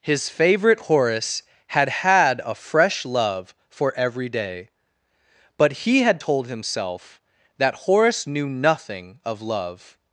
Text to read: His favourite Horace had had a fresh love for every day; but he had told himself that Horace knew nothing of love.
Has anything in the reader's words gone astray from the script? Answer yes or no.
no